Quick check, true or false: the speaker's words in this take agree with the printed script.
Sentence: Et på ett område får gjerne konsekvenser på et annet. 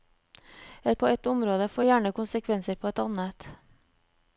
true